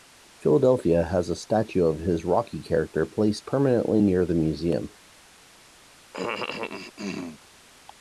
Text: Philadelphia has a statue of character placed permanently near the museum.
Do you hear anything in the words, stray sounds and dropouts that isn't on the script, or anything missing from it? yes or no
yes